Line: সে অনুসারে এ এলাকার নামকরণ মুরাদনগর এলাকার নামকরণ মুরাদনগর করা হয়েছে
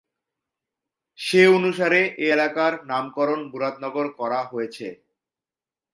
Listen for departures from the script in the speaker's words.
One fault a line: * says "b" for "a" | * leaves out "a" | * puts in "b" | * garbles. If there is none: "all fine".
* leaves out "এলাকার নামকরণ মুরাদনগর"